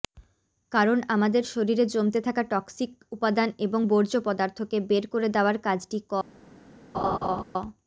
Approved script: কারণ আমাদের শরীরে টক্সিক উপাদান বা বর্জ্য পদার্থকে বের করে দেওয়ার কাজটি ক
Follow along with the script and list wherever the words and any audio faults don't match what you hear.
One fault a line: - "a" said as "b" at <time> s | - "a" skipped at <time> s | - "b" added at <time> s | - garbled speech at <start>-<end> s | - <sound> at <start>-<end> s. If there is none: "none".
- "জমতে থাকা" added at 1.9 s
- "বা" said as "এবং" at 3.6 s
- laugh at 6.9-7.4 s